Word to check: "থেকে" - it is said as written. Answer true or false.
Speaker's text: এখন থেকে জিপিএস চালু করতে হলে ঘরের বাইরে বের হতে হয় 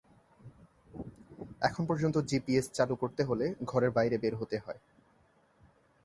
false